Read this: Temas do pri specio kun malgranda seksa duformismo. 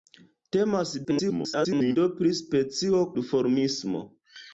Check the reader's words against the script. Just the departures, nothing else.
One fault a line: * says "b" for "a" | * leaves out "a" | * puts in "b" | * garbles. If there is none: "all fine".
* garbles
* leaves out "kun malgranda seksa"